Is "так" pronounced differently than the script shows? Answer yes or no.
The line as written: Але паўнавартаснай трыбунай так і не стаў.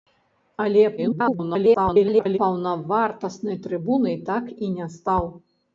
no